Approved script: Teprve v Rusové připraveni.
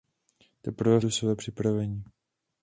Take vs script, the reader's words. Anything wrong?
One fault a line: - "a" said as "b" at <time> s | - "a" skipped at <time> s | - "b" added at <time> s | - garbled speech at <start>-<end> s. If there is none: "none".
none